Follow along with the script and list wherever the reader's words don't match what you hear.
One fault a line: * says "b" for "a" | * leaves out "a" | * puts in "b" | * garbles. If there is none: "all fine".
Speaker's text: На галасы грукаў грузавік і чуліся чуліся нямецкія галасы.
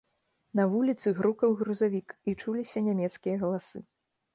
* says "вуліцы" for "галасы"
* leaves out "чуліся"